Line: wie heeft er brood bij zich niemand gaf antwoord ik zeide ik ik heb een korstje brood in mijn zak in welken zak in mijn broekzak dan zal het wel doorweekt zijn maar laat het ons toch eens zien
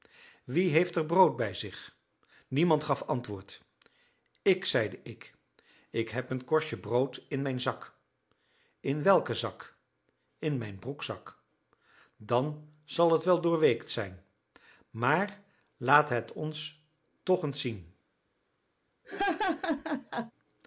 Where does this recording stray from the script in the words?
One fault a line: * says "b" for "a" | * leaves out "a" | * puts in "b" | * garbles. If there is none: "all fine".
all fine